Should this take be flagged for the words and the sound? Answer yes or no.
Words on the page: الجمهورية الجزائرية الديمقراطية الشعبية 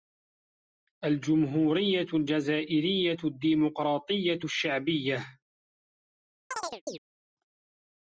yes